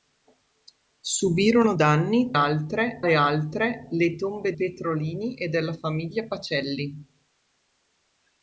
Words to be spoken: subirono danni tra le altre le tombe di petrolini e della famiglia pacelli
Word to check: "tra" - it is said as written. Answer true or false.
false